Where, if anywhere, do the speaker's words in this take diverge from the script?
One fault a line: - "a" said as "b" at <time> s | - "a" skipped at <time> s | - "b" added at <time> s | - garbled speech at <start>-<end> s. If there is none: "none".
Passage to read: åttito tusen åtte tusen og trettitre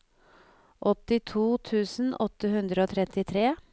- "tusen" said as "hundre" at 2.6 s